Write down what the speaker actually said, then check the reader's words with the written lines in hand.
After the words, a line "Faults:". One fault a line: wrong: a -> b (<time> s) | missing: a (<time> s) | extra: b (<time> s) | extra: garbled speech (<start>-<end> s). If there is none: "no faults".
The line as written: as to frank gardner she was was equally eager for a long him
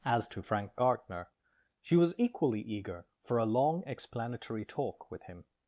as to frank gardner she was equally eager for a long explanatory talk with him
Faults:
missing: was (2.2 s)
extra: explanatory talk with (3.9 s)